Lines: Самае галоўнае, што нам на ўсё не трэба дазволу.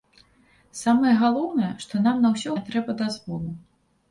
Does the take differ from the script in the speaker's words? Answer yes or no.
no